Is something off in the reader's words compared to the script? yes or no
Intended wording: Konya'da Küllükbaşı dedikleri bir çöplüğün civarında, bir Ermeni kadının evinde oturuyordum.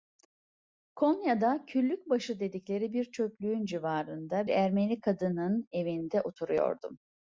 yes